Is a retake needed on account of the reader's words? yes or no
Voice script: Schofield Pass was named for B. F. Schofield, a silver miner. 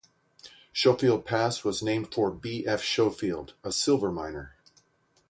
no